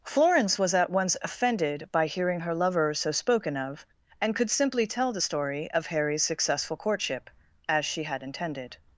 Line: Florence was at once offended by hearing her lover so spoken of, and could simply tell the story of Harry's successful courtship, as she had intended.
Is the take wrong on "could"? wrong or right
right